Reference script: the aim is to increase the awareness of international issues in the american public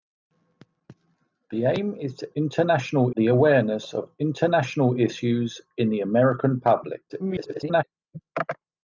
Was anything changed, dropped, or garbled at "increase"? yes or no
yes